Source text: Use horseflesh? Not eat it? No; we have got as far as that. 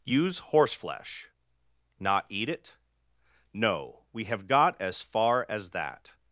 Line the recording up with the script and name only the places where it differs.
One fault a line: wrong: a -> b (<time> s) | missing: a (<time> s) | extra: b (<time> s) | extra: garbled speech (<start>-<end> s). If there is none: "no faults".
no faults